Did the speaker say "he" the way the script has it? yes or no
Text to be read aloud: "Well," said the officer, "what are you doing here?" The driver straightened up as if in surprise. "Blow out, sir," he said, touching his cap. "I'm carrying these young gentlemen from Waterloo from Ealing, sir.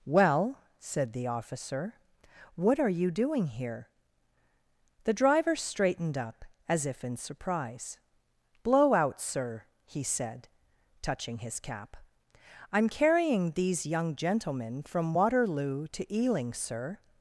yes